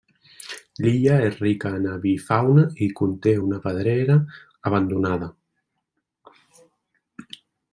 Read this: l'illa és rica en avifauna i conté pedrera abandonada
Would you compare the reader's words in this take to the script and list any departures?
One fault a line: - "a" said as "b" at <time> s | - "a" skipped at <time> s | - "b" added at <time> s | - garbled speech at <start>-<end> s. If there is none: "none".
- "una" added at 3.5 s